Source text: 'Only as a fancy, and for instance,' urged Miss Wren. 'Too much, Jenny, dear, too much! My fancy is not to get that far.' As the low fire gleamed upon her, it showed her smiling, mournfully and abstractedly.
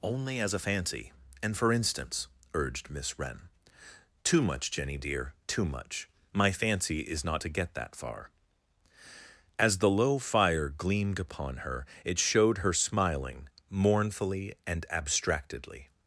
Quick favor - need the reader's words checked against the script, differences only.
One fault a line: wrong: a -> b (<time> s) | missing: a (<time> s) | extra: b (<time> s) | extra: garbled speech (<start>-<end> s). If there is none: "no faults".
no faults